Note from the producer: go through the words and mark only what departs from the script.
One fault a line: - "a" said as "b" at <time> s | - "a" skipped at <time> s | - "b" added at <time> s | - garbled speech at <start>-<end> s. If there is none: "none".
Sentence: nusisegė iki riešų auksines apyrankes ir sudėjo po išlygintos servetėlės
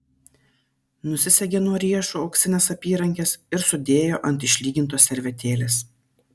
- "iki" said as "nuo" at 1.6 s
- "po" said as "ant" at 4.3 s